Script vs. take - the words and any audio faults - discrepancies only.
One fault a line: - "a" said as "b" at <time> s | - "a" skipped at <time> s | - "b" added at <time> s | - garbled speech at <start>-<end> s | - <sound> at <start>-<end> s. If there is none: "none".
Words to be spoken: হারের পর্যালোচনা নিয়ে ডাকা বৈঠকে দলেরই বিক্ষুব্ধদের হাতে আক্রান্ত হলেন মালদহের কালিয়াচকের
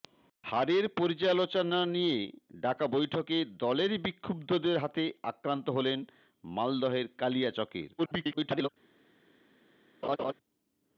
- garbled speech at 8.0-8.7 s
- laugh at 10.0-10.3 s